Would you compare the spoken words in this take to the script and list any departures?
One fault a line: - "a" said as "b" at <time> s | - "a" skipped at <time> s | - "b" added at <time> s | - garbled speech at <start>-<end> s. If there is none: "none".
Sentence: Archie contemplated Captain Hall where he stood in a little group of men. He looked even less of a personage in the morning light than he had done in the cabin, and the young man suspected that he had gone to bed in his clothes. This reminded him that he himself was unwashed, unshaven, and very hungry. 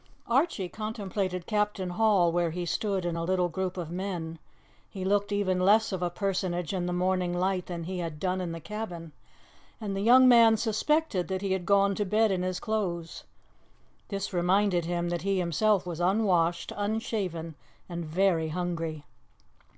none